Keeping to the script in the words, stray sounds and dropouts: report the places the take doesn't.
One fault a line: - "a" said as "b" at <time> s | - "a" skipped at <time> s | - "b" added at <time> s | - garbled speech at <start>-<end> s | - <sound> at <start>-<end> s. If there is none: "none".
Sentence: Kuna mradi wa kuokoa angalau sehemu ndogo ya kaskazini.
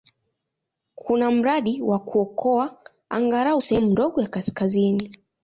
none